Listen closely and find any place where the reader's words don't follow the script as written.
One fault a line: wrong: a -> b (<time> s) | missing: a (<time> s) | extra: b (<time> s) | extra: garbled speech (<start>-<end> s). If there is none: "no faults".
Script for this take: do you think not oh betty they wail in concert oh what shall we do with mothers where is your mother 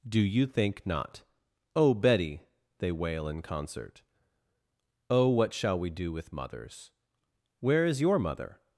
no faults